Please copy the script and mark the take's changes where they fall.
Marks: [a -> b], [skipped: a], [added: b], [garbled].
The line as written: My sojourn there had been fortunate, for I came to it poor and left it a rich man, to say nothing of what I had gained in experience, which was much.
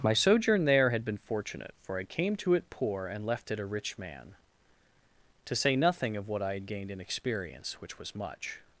My sojourn there had been fortunate, for I came to it poor and left it a rich man, to say nothing of what I had gained in experience, which was much.